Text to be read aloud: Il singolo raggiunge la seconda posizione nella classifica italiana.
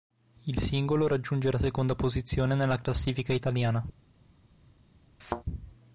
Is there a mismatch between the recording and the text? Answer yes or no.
no